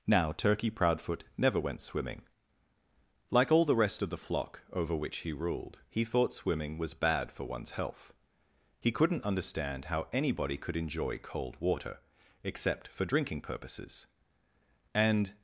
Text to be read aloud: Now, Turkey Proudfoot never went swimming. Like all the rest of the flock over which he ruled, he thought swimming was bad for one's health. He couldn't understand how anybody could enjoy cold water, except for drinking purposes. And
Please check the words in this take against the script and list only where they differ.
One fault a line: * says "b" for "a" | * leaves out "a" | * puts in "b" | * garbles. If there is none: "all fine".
all fine